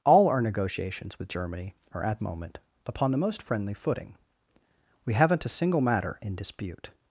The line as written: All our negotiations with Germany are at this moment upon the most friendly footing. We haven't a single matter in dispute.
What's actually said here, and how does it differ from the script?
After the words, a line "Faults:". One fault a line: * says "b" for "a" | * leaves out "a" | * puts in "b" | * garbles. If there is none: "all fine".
All our negotiations with Germany are at moment upon the most friendly footing. We haven't a single matter in dispute.
Faults:
* leaves out "this"